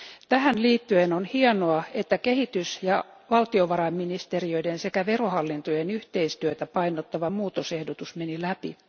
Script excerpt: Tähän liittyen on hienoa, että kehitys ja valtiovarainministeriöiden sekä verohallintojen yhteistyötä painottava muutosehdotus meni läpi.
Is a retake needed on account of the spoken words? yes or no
no